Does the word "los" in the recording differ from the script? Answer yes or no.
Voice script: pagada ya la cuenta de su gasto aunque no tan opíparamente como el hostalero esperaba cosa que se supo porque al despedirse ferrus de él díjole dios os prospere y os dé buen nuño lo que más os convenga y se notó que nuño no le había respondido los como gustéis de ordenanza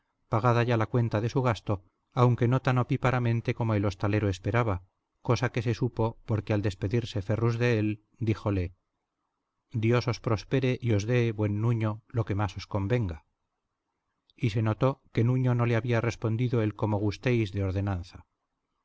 yes